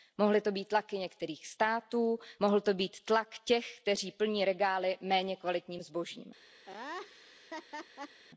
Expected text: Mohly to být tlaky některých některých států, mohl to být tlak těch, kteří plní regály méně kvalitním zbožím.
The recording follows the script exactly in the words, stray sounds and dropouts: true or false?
false